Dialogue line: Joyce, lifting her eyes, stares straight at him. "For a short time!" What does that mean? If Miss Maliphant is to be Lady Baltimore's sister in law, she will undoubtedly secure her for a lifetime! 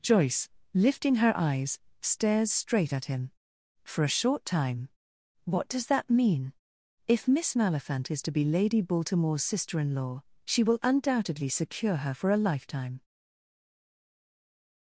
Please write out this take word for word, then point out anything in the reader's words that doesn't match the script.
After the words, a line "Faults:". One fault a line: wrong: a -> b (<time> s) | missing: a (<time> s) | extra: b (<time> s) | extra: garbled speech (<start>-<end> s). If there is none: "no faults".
Joyce, lifting her eyes, stares straight at him. "For a short time!" What does that mean? If Miss Maliphant is to be Lady Baltimore's sister in law, she will undoubtedly secure her for a lifetime!
Faults:
no faults